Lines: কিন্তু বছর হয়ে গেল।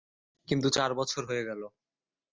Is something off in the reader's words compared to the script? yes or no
yes